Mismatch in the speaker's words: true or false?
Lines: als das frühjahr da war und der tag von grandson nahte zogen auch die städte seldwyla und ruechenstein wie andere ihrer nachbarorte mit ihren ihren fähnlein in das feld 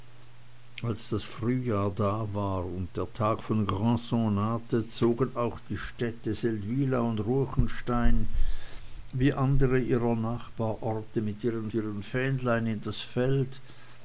false